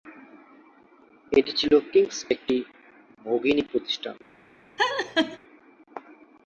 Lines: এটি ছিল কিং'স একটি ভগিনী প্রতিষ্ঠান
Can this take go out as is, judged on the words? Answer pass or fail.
pass